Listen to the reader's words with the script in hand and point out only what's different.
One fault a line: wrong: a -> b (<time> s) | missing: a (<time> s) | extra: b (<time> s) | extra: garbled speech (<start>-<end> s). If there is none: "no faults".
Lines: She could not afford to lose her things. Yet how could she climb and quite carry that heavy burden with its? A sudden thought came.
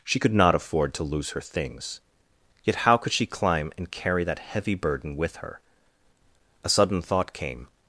missing: quite (3.9 s)
wrong: its -> her (5.4 s)